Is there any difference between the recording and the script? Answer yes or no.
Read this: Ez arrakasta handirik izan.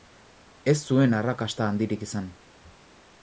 yes